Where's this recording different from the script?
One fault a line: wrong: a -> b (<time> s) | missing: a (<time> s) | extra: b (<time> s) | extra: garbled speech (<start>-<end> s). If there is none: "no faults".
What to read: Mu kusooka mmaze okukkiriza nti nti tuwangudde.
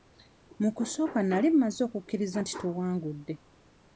extra: nali (1.3 s)
missing: nti (2.5 s)